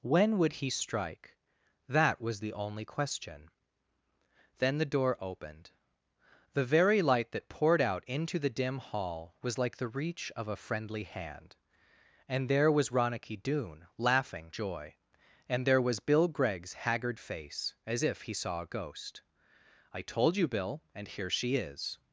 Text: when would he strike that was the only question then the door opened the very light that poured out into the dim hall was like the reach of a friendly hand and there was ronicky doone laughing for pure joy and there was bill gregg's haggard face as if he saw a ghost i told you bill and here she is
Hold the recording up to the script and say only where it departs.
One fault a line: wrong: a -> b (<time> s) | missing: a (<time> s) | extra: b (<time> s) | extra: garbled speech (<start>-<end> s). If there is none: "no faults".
missing: for pure (14.5 s)